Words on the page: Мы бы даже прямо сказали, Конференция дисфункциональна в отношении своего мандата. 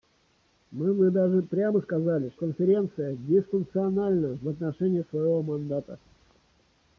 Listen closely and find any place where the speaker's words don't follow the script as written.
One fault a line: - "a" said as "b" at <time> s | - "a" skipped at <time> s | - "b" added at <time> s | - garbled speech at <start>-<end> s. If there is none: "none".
none